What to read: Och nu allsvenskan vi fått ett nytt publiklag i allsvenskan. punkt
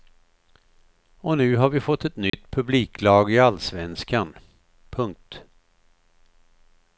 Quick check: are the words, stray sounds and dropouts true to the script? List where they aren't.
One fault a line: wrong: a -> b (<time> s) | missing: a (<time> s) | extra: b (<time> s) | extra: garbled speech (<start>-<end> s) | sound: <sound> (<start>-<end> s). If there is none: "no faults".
wrong: allsvenskan -> har (1.6 s)
sound: dropout (2.3-2.3 s)